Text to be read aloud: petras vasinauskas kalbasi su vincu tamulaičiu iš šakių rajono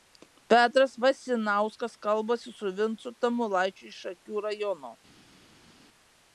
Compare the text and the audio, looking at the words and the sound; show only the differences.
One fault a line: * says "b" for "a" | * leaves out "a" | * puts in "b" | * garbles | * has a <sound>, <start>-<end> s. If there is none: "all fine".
all fine